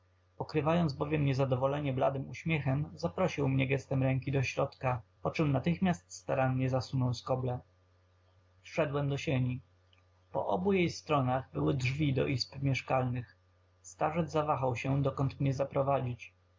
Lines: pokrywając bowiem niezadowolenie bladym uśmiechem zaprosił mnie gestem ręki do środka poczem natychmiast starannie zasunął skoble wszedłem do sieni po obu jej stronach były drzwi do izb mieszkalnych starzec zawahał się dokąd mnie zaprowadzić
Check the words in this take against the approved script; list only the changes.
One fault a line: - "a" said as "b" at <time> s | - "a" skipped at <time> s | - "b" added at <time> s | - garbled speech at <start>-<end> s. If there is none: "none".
none